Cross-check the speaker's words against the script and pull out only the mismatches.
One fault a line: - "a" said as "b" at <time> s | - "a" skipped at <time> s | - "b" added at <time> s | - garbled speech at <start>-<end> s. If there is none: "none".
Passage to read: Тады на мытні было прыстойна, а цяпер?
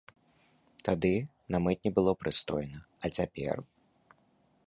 none